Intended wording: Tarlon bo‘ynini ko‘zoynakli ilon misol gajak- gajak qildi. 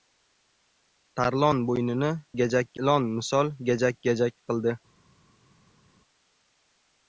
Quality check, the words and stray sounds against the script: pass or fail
fail